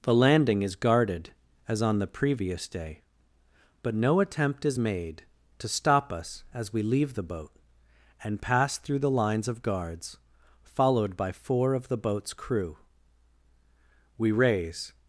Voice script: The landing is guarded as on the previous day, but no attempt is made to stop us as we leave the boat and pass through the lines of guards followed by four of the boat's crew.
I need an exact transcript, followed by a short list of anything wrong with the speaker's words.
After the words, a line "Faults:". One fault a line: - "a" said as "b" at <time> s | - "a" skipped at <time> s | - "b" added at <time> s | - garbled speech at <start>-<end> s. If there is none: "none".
The landing is guarded as on the previous day, but no attempt is made to stop us as we leave the boat and pass through the lines of guards followed by four of the boat's crew. We raise
Faults:
- "We raise" added at 14.2 s